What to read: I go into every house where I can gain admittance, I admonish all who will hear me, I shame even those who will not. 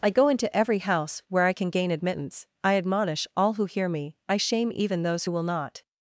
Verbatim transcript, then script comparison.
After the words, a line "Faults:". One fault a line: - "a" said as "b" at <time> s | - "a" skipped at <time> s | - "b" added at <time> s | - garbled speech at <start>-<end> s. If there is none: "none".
I go into every house where I can gain admittance, I admonish all who hear me, I shame even those who will not.
Faults:
- "will" skipped at 3.7 s